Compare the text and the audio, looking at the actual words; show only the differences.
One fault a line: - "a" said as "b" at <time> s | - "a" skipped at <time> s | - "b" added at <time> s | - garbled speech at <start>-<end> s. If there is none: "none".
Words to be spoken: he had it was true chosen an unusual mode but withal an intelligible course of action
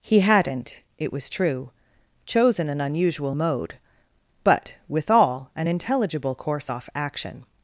- "had" said as "hadn't" at 0.2 s
- "of" said as "off" at 6.7 s